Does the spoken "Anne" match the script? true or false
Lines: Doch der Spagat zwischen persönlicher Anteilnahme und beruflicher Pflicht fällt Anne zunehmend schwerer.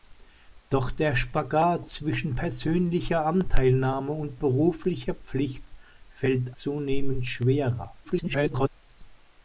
false